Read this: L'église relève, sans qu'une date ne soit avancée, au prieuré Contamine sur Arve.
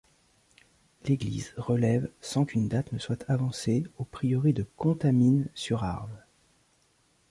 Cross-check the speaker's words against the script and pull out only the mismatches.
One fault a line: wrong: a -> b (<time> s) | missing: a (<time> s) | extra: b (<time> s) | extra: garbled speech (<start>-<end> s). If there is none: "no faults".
extra: de (4.5 s)